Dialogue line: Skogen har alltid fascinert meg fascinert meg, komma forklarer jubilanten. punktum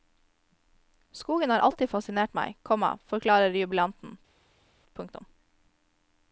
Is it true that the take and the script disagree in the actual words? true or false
true